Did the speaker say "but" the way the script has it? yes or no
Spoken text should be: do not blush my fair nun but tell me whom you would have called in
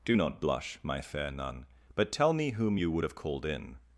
yes